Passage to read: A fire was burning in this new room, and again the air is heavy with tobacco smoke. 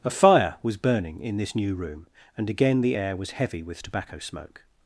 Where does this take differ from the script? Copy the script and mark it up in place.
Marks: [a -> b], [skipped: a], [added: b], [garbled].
A fire was burning in this new room, and again the air [is -> was] heavy with tobacco smoke.